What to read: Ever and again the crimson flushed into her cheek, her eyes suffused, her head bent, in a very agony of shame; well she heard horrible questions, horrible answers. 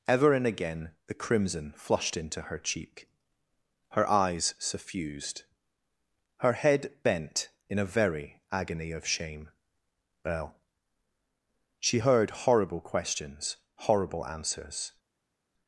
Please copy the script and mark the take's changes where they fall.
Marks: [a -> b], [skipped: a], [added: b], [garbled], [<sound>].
Ever and again the crimson flushed into her cheek, her eyes suffused, her head bent, in a very agony of shame; well she heard horrible questions, horrible answers.